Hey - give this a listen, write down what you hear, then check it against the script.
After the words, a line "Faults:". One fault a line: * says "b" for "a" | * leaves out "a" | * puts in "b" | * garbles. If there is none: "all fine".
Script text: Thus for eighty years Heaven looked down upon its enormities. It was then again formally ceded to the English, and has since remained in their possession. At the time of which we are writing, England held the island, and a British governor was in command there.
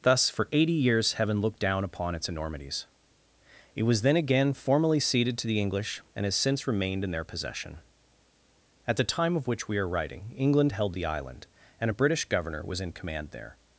Thus for eighty years Heaven looked down upon its enormities. It was then again formally ceded to the English, and has since remained in their possession. At the time of which we are writing, England held the island, and a British governor was in command there.
Faults:
all fine